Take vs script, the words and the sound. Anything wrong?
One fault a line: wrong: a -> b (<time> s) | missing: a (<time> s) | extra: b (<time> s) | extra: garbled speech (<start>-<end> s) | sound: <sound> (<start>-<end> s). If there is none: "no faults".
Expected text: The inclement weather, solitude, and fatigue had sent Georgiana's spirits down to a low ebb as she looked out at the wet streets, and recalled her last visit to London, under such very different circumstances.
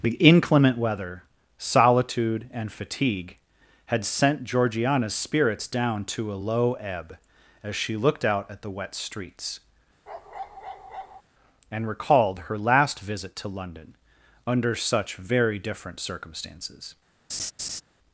sound: bark (10.1-11.2 s)
sound: laugh (17.3-17.8 s)